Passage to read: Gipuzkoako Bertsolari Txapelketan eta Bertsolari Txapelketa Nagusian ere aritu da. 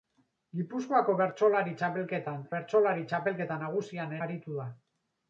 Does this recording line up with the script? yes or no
no